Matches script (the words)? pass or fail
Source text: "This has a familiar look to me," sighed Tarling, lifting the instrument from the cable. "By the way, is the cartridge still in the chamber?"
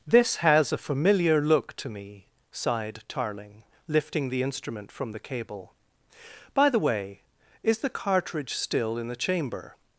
pass